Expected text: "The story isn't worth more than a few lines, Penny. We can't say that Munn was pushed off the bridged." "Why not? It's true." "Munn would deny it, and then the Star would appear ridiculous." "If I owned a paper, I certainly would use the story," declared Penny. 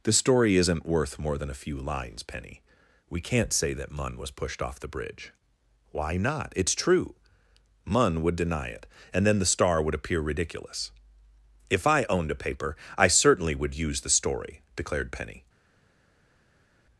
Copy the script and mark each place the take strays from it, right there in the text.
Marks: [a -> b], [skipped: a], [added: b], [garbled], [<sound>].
"The story isn't worth more than a few lines, Penny. We can't say that Munn was pushed off the [bridged." -> bridge] "Why not? It's true." "Munn would deny it, and then the Star would appear ridiculous." "If I owned a paper, I certainly would use the story," declared Penny.